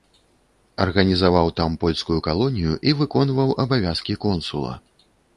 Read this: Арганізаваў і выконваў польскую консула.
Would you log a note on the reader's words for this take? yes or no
yes